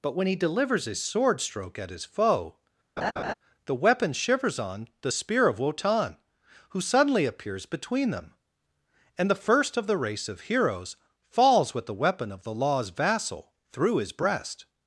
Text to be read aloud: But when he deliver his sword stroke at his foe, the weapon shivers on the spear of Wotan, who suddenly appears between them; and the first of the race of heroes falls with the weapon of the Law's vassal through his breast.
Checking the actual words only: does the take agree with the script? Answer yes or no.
no